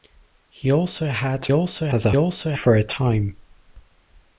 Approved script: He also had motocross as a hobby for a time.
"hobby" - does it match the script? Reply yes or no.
no